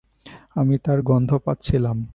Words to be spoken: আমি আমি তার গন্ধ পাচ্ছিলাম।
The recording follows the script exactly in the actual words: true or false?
false